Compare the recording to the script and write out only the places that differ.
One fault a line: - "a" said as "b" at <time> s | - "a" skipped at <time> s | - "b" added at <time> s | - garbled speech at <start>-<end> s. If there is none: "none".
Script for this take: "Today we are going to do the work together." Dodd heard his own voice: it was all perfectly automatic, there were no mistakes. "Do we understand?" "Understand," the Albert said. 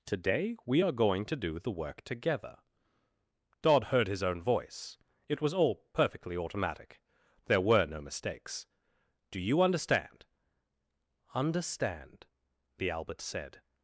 - "we" said as "you" at 9.4 s